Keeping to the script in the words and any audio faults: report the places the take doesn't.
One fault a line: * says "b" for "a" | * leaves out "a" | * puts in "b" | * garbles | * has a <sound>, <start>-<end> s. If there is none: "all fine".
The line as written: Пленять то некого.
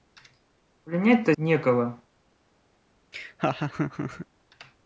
* has a laugh, 3.1-4.3 s